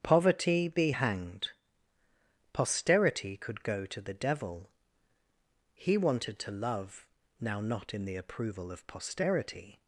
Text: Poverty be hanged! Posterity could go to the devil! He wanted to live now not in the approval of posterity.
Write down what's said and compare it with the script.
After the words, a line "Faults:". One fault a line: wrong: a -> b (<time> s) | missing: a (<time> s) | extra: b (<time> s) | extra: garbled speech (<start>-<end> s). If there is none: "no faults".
Poverty be hanged! Posterity could go to the devil! He wanted to love now not in the approval of posterity.
Faults:
wrong: live -> love (6.5 s)